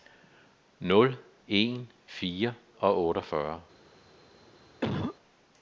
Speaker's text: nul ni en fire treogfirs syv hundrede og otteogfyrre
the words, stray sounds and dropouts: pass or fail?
fail